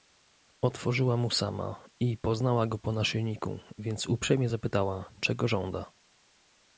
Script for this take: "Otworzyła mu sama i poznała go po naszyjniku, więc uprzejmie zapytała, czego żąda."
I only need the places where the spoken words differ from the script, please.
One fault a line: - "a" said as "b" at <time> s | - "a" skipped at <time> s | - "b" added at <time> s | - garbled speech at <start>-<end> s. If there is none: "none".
none